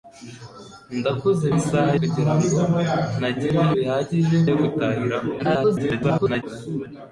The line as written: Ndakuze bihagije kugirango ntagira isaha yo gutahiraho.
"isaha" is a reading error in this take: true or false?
true